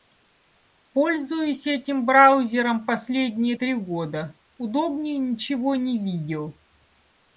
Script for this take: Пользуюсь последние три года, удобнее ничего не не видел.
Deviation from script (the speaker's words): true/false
true